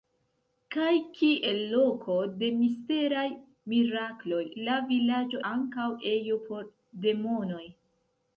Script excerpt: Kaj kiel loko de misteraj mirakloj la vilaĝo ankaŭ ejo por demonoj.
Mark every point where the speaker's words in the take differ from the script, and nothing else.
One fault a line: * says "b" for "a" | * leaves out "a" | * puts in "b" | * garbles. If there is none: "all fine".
all fine